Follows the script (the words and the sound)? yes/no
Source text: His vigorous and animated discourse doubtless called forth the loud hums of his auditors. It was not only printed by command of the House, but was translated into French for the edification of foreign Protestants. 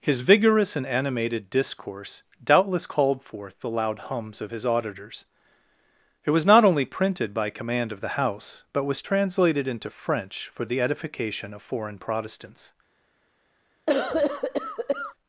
no